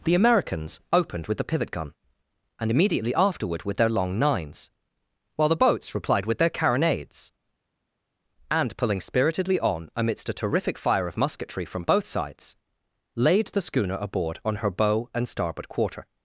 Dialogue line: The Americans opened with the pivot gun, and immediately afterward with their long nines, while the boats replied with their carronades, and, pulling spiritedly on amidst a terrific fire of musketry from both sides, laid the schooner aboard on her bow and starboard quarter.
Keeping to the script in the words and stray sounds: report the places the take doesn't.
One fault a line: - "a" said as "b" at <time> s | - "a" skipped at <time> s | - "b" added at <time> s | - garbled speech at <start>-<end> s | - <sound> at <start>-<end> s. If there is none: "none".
none